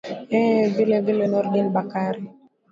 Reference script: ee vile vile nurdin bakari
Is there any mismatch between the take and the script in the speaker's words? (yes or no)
no